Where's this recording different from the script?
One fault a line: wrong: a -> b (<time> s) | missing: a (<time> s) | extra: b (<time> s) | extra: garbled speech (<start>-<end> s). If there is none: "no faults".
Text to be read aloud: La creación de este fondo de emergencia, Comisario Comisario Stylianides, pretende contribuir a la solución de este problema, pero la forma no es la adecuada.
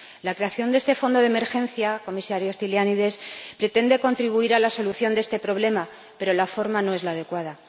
missing: Comisario (2.5 s)